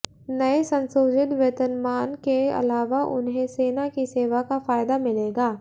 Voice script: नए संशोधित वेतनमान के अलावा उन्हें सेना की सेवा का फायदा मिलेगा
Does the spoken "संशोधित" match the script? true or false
true